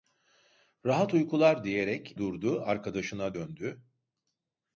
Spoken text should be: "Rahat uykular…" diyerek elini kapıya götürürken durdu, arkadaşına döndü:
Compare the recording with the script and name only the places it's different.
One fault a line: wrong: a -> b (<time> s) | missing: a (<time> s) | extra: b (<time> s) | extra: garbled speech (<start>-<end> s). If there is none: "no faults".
missing: elini kapıya götürürken (2.1 s)